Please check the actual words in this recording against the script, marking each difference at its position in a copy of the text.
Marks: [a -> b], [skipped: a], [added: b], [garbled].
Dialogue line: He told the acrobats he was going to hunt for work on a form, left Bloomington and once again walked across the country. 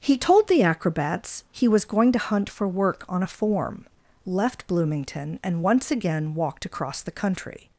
He told the acrobats he was going to hunt for work on a form, left Bloomington and once again walked across the country.